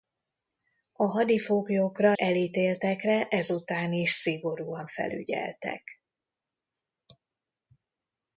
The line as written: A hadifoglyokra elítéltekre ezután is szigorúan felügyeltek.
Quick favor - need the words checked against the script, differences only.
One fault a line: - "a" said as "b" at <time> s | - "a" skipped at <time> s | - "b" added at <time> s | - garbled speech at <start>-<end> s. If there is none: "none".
none